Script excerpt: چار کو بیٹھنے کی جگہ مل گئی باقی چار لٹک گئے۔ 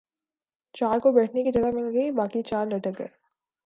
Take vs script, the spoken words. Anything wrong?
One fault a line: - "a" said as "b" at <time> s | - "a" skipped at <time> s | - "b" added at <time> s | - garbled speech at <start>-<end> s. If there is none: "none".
none